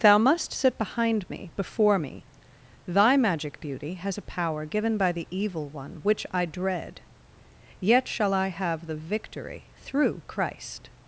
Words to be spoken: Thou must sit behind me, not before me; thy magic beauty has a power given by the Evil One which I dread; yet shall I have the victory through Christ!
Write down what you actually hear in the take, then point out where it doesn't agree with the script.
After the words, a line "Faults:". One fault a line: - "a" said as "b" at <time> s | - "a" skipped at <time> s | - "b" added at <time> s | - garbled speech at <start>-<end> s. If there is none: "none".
Thou must sit behind me, before me; thy magic beauty has a power given by the Evil One which I dread; yet shall I have the victory through Christ!
Faults:
- "not" skipped at 1.5 s